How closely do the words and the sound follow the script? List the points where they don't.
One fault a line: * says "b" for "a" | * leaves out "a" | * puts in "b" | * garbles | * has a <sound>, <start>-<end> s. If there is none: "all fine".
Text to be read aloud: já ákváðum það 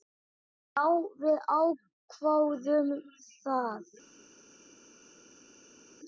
* puts in "við"